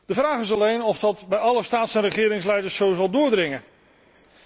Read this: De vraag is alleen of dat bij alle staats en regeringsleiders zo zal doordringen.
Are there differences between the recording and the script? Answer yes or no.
no